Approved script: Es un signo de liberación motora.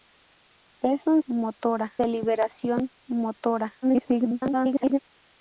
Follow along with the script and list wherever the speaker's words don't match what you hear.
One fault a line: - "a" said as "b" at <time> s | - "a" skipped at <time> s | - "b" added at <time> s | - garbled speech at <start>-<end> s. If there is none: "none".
- "signo" said as "motora" at 1.3 s
- garbled speech at 3.8-5.0 s